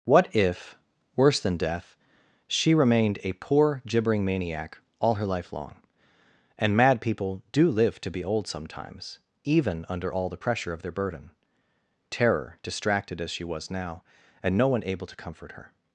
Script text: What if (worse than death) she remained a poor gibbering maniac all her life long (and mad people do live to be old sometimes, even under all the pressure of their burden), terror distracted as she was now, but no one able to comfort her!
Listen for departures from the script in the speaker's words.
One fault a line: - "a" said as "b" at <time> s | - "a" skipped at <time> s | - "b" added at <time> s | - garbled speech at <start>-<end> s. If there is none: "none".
- "but" said as "and" at 14.4 s